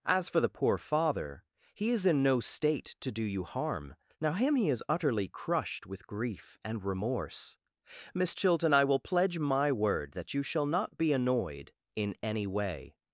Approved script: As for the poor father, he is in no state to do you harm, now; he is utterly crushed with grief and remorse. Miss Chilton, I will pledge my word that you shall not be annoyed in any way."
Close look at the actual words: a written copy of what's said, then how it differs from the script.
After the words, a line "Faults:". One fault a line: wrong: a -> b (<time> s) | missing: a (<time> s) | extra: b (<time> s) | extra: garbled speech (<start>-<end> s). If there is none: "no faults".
As for the poor father, he is in no state to do you harm, now; him he is utterly crushed with grief and remorse. Miss Chilton, I will pledge my word that you shall not be annoyed in any way."
Faults:
extra: him (4.3 s)